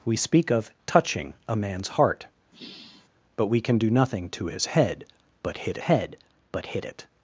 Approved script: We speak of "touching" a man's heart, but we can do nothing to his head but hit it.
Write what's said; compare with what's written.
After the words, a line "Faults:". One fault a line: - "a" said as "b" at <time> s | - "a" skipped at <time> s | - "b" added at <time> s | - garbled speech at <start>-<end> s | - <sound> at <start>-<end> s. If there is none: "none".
We speak of "touching" a man's heart, but we can do nothing to his head but hit head but hit it.
Faults:
- sigh at 2.5-3.1 s
- "head but hit" added at 5.8 s